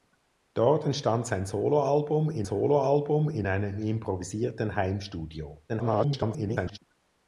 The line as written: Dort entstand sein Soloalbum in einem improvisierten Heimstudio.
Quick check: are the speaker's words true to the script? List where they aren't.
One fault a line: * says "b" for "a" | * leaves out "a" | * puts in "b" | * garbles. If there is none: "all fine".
* puts in "Soloalbum in"
* garbles